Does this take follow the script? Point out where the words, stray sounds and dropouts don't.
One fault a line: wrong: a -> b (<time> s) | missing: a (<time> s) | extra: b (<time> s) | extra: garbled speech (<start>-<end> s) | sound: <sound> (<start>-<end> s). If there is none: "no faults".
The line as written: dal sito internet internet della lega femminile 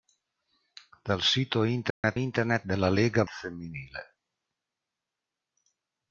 sound: dropout (1.9-2.0 s)